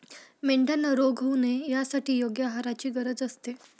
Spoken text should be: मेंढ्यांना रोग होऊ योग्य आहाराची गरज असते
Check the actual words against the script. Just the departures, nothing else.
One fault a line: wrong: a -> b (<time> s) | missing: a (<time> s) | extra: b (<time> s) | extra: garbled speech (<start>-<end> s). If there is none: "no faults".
extra: नये यासाठी (1.4 s)